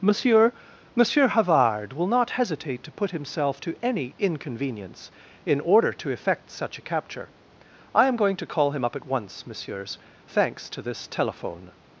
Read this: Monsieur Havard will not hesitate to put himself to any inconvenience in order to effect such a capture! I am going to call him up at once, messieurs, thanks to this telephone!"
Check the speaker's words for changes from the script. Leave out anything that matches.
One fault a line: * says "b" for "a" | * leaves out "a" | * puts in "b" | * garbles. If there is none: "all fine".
* puts in "monsieur"